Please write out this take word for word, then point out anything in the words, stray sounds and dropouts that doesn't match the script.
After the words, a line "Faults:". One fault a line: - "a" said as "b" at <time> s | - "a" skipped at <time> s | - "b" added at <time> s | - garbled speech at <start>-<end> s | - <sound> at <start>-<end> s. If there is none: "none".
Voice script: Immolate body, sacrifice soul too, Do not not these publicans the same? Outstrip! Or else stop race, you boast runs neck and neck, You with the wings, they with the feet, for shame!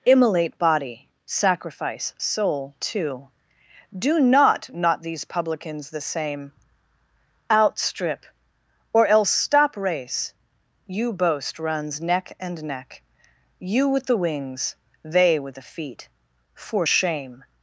Immolate body, sacrifice soul too, Do not not these publicans the same? Outstrip! Or else stop race, you boast runs neck and neck, You with the wings, they with the feet, for shame!
Faults:
none